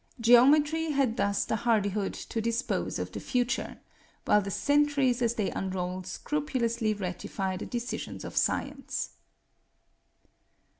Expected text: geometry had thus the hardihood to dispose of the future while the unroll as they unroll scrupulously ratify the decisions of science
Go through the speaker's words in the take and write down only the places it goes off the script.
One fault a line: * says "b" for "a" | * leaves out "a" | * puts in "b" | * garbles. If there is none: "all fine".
* says "centuries" for "unroll"